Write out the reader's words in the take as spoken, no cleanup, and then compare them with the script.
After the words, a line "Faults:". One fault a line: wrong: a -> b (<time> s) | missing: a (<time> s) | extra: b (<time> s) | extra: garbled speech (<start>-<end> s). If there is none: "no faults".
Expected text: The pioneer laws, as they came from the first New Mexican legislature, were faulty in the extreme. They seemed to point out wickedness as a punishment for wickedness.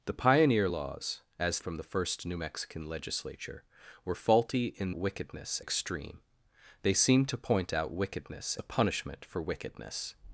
The pioneer laws, as from the first New Mexican legislature, were faulty in wickedness extreme. They seemed to point out wickedness a punishment for wickedness.
Faults:
missing: they came (1.6 s)
wrong: the -> wickedness (4.9 s)
missing: as (8.6 s)